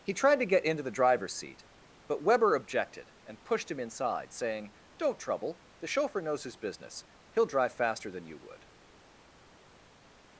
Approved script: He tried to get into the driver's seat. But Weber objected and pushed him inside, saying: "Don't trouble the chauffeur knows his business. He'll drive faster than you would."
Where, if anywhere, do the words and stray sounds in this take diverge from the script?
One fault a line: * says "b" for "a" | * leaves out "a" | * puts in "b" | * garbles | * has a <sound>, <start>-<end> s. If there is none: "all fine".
all fine